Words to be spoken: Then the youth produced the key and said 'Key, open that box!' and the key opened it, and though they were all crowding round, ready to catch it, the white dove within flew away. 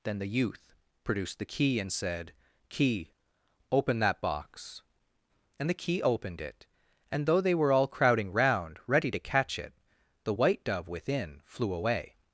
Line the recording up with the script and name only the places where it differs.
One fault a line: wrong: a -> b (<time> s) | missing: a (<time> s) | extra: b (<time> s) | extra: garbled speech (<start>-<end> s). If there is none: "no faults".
no faults